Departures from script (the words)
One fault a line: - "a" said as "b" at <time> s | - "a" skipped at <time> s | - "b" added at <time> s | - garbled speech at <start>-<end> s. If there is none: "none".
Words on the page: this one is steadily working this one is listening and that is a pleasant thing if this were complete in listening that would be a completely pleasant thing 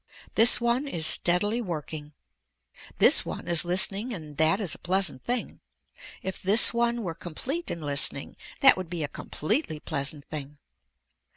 - "one" added at 6.7 s